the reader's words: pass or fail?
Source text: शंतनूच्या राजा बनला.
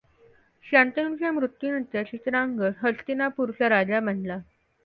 fail